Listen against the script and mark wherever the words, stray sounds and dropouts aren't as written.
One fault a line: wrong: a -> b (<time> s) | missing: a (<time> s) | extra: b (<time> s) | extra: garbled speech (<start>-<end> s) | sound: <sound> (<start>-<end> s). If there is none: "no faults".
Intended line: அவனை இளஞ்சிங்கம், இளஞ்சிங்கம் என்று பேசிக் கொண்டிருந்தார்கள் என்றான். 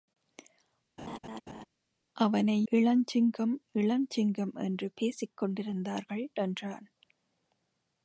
sound: laugh (1.0-1.7 s)